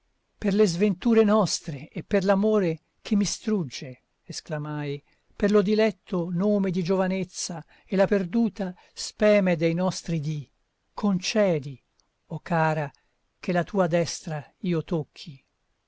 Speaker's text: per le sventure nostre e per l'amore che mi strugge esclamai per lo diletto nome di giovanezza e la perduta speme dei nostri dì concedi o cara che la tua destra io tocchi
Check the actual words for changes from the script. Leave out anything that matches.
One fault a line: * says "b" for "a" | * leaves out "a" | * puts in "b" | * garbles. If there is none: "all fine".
all fine